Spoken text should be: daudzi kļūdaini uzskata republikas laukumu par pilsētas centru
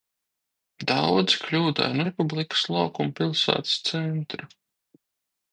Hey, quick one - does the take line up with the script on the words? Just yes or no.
no